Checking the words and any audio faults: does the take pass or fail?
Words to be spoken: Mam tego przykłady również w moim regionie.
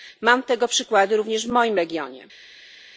pass